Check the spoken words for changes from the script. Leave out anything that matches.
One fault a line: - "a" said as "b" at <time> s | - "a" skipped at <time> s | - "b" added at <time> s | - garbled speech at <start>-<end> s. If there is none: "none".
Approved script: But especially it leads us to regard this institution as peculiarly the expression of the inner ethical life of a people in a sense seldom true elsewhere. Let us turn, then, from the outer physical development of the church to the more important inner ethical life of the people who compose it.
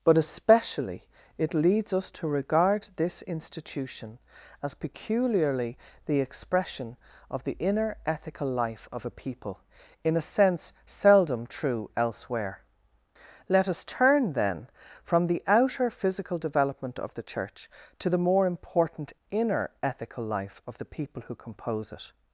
none